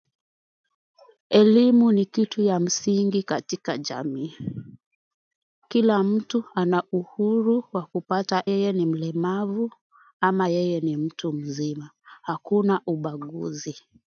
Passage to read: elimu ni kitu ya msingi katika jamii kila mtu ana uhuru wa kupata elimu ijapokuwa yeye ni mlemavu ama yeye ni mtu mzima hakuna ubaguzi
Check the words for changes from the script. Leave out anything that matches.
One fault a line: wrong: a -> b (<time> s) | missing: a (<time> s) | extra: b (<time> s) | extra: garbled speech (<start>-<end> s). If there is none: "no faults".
missing: elimu ijapokuwa (8.4 s)